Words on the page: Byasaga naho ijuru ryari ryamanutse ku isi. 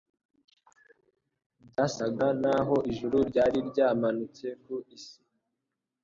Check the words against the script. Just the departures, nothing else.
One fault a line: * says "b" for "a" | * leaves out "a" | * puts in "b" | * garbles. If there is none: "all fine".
all fine